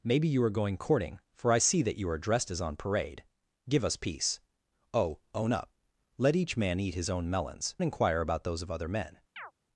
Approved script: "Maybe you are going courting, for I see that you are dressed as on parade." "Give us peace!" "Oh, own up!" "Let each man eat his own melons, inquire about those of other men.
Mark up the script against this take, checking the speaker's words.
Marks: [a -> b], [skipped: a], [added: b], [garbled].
"Maybe you are going courting, for I see that you are dressed as on parade." "Give us peace!" "Oh, own up!" "Let each man eat his own melons, inquire about those of other men.